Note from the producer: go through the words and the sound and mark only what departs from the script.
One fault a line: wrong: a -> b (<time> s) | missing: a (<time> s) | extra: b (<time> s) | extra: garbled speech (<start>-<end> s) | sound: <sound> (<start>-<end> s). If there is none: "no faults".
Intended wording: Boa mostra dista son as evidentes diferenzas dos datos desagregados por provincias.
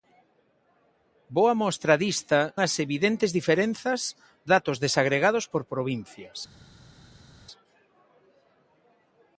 missing: son (2.4 s)
missing: dos (4.0 s)